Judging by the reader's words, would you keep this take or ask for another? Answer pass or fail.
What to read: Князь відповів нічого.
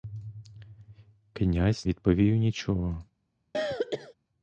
pass